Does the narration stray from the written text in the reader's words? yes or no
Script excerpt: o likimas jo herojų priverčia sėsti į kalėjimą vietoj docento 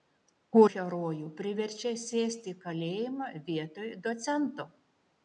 yes